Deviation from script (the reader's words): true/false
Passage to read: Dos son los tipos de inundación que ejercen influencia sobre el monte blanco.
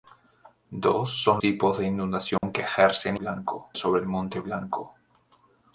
true